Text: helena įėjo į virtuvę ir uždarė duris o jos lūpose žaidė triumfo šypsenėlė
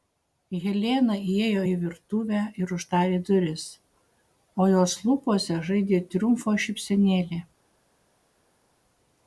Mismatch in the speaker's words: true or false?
false